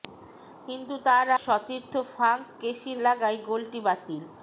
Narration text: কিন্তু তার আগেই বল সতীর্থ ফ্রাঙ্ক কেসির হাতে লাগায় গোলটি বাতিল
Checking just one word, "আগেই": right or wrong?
wrong